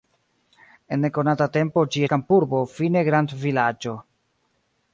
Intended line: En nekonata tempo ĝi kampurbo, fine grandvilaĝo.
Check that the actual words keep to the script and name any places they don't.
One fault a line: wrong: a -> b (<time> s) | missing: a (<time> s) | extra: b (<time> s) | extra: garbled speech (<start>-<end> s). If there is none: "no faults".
no faults